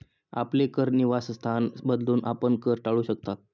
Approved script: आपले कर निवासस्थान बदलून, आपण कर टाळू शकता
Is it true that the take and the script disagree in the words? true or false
false